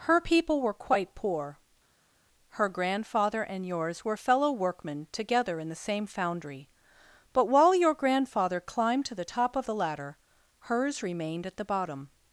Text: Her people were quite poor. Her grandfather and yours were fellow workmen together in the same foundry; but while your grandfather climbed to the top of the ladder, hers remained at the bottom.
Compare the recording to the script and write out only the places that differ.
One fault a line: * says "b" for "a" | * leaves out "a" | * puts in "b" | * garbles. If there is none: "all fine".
all fine